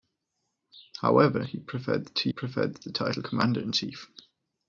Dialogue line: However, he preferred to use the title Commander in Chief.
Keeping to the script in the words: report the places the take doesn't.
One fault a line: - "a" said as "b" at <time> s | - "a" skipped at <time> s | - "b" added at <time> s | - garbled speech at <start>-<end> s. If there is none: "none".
- "use" said as "preferred" at 2.3 s